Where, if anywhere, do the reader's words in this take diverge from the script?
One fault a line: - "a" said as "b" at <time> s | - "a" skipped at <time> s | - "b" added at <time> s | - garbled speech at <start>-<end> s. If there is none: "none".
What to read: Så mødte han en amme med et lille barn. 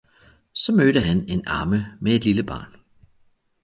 none